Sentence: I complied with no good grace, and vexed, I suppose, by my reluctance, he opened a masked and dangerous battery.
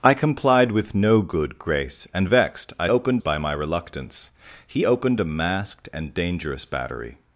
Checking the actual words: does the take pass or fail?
fail